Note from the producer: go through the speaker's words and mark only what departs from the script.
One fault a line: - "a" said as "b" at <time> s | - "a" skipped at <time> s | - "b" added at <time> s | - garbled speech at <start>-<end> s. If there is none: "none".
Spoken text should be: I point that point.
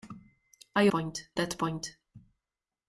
none